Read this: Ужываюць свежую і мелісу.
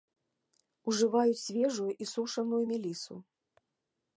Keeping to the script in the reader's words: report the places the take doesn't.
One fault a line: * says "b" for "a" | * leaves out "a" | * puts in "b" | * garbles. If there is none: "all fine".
* puts in "сушаную"